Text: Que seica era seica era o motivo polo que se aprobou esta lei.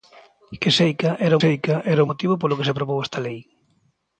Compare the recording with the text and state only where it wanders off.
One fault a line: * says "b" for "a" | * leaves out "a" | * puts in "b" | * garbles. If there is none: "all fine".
all fine